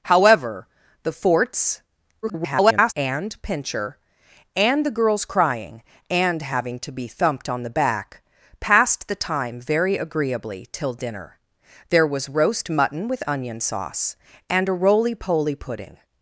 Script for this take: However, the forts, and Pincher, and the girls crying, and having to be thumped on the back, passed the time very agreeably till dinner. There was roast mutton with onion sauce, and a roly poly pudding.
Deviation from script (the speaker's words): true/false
true